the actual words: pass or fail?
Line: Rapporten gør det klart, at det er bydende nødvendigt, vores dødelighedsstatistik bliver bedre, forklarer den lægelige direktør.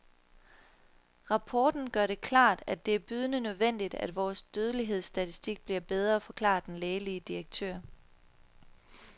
fail